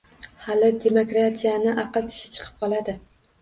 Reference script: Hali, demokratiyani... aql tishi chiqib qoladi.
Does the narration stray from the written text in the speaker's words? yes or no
no